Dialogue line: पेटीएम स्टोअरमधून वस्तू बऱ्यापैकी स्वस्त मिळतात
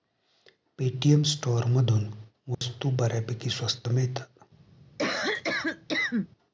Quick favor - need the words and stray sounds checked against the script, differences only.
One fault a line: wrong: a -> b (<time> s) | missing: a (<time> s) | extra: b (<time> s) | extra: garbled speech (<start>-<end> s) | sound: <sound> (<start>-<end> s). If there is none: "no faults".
sound: dropout (2.5-2.6 s)
sound: cough (5.0-6.3 s)